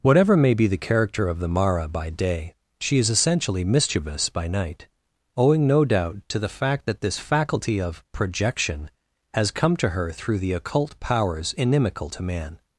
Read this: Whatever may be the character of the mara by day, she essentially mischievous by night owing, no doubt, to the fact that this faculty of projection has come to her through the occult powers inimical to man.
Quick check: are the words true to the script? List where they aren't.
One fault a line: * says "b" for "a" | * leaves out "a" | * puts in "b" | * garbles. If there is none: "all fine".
* puts in "is"